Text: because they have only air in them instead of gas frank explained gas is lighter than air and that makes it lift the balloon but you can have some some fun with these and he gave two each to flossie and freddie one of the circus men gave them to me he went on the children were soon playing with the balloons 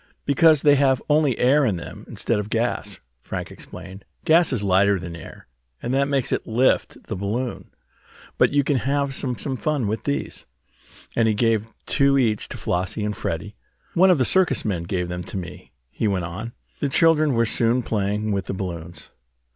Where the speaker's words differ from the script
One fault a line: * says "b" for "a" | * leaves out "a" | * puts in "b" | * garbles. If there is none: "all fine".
all fine